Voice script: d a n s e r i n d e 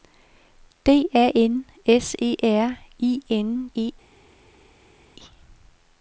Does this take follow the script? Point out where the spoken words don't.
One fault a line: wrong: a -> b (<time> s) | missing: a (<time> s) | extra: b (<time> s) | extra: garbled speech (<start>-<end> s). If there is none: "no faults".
missing: d (3.7 s)